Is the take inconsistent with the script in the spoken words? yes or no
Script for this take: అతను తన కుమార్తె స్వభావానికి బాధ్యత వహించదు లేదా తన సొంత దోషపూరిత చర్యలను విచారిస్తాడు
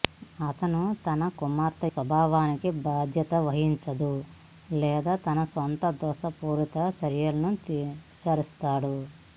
no